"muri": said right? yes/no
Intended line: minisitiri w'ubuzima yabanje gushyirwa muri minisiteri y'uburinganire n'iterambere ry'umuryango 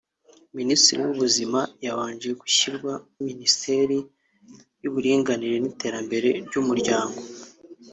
no